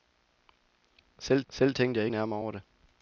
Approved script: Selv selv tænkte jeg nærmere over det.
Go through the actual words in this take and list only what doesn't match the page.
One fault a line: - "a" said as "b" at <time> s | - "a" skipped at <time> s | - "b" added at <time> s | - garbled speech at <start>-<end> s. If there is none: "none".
none